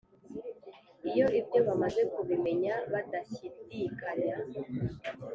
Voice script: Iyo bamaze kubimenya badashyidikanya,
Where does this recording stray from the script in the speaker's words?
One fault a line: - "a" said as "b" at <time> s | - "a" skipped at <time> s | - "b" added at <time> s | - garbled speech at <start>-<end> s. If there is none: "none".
- "ibyo" added at 1.4 s